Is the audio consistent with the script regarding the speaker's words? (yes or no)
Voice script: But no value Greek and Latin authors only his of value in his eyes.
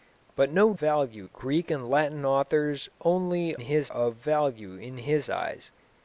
yes